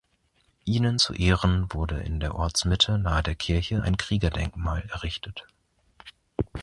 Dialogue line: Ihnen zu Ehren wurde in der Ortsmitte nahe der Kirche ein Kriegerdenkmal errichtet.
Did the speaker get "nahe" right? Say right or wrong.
right